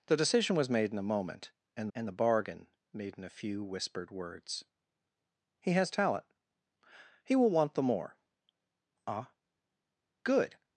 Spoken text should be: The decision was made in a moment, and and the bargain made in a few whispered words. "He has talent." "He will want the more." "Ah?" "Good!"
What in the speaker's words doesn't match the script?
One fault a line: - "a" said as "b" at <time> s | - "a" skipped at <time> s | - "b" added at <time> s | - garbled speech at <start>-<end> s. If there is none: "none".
none